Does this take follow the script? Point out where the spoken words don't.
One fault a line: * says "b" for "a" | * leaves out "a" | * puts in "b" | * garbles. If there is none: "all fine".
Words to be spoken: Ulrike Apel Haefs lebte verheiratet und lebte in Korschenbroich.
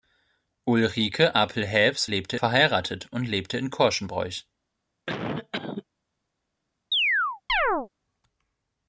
all fine